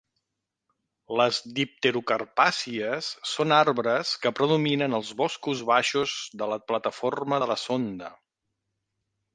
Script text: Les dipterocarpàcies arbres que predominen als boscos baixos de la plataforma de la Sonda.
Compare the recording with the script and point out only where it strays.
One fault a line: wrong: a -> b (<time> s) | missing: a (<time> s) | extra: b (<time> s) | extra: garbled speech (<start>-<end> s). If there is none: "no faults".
extra: són (3.3 s)